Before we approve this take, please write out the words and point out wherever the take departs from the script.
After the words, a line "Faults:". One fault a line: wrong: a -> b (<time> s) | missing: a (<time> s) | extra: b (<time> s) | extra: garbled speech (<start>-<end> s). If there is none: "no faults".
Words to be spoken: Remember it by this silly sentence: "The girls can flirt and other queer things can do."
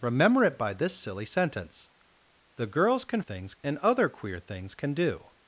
Remember it by this silly sentence: "The girls can things and other queer things can do."
Faults:
wrong: flirt -> things (3.2 s)